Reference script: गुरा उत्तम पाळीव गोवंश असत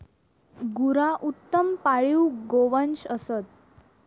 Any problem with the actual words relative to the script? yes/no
no